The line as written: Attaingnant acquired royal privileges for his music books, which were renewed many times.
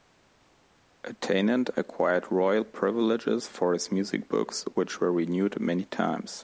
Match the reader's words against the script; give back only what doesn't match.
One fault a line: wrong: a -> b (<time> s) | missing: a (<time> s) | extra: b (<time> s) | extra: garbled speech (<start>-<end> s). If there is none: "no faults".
no faults